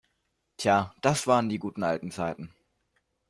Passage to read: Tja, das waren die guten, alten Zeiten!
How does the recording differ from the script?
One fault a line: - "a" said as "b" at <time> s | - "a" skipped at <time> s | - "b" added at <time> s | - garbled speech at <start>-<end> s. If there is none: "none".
none